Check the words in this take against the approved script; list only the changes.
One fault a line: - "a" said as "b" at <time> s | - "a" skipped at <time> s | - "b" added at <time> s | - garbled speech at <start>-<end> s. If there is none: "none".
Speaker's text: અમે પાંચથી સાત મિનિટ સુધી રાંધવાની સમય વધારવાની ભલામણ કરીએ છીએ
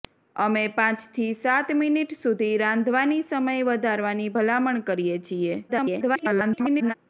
- garbled speech at 5.7-6.9 s